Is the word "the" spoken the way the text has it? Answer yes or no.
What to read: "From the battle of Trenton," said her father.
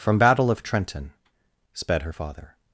no